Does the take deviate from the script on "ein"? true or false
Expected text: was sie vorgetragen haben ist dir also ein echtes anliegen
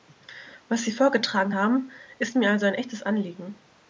false